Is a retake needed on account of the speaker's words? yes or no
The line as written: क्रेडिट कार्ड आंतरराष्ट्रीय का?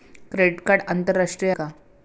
no